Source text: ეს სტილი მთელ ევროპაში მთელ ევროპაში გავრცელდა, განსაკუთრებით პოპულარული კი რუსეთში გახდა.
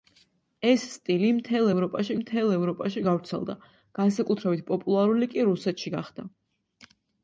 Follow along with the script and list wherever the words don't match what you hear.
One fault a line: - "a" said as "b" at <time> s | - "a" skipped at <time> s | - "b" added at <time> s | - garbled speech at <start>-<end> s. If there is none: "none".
none